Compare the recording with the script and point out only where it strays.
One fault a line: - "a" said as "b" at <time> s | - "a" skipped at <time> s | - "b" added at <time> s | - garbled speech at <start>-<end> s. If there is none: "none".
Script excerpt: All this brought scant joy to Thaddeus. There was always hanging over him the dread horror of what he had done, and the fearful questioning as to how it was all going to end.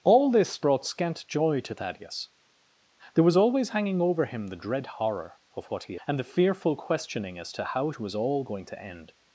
- "had done" skipped at 6.0 s